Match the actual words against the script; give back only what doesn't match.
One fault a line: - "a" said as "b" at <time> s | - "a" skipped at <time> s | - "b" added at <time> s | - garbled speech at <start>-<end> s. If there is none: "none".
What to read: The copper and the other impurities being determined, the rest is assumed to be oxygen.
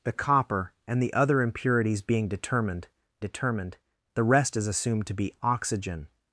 - "determined" added at 3.2 s